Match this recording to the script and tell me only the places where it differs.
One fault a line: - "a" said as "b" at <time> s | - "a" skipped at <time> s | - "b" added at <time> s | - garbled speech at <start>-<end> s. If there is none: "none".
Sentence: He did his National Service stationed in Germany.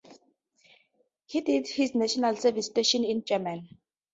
none